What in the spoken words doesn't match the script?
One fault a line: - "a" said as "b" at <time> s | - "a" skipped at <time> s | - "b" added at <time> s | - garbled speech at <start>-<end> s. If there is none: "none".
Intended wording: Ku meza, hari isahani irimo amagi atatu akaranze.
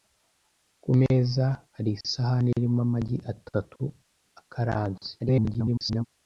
- garbled speech at 5.2-6.0 s